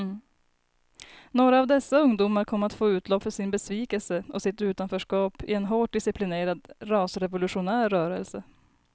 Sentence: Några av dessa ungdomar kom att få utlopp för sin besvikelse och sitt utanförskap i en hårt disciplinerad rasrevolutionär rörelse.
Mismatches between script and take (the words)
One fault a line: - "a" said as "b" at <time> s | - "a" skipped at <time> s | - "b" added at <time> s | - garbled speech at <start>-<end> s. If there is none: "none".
none